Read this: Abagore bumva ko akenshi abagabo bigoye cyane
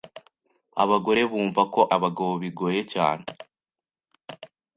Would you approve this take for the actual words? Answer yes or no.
no